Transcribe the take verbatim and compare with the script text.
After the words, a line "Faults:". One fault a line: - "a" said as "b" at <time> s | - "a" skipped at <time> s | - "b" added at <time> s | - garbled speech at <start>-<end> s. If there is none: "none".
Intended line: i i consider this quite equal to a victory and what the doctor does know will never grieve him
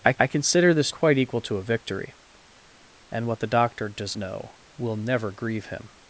i i consider this quite equal to a victory and what the doctor does know will never grieve him
Faults:
none